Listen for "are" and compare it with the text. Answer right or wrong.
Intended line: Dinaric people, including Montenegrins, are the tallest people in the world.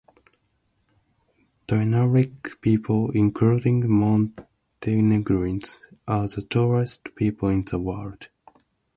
right